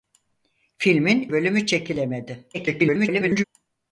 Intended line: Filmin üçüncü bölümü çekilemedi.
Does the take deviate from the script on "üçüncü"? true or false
true